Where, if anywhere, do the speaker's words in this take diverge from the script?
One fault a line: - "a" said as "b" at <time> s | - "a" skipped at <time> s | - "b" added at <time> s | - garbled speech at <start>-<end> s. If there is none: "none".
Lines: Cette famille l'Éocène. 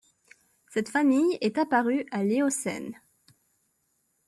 - "est apparue à" added at 1.4 s